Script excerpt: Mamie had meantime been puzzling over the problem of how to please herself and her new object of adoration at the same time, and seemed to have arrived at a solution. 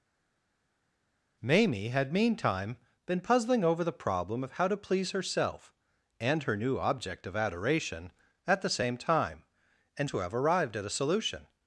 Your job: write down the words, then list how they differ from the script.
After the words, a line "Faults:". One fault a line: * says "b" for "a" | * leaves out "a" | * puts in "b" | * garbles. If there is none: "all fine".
Mamie had meantime been puzzling over the problem of how to please herself and her new object of adoration at the same time, and to have arrived at a solution.
Faults:
* leaves out "seemed"